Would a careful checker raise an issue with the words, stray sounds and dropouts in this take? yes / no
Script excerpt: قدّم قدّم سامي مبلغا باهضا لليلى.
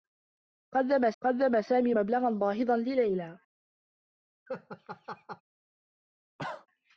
yes